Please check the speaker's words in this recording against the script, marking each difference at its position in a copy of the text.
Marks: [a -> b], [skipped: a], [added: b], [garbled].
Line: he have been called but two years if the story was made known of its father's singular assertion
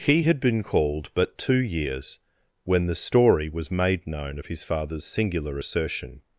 he [have -> had] been called but two years [if -> when] the story was made known of [its -> his] father's singular assertion